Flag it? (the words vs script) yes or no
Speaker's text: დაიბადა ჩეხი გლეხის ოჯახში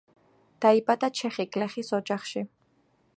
no